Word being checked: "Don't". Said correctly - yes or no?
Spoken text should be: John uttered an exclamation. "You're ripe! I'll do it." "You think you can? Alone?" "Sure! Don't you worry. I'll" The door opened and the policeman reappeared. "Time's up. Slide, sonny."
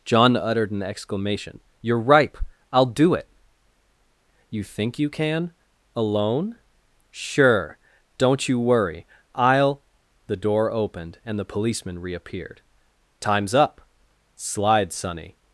yes